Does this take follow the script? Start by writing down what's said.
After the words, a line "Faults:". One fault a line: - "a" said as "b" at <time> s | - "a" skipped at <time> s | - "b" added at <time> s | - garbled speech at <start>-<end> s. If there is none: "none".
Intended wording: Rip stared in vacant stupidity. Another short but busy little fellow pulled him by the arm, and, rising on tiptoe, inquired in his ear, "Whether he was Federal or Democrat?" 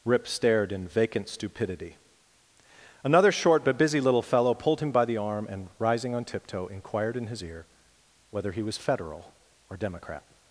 Rip stared in vacant stupidity. Another short but busy little fellow pulled him by the arm, and, rising on tiptoe, inquired in his ear, "Whether he was Federal or Democrat?"
Faults:
none